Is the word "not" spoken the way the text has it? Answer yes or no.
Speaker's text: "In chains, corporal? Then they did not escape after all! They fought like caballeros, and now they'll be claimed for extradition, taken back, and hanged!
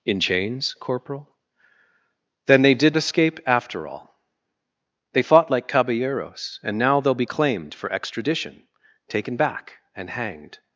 no